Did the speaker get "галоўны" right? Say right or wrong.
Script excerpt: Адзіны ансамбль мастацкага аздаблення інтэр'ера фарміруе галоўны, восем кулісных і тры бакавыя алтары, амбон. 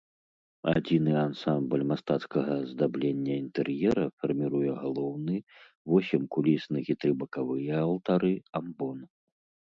right